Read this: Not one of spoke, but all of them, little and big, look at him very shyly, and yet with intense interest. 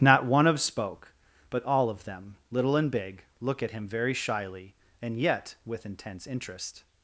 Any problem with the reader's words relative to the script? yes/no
no